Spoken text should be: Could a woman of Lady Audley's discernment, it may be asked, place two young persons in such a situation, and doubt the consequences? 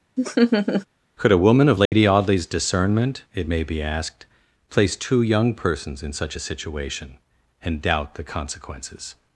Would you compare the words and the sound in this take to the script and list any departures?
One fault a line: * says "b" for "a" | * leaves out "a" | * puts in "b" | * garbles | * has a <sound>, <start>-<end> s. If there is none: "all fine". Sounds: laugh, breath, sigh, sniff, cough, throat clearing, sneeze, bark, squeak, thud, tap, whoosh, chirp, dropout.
* has a laugh, 0.2-0.9 s
* has a dropout, 1.9-1.9 s